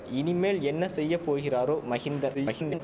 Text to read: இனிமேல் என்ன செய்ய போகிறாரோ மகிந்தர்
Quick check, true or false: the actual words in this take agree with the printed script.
false